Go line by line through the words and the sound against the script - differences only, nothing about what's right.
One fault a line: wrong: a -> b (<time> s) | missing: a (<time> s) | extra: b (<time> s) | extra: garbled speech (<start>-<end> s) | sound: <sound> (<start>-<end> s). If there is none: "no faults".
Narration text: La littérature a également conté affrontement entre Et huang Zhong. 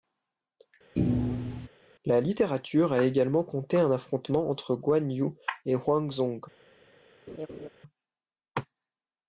sound: thud (1.0-1.7 s)
extra: un (3.8 s)
extra: Guan Yu (4.7 s)
sound: laugh (7.3-7.7 s)